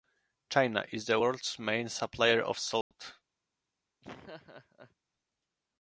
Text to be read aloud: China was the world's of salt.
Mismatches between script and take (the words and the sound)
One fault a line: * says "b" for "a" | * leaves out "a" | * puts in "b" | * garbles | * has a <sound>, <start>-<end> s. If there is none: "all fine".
* says "is" for "was"
* puts in "main supplier"
* has a dropout, 2.8-2.9 s
* has a laugh, 4.0-5.0 s